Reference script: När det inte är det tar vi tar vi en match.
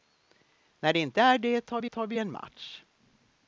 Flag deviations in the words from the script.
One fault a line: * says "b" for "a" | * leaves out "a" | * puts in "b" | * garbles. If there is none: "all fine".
all fine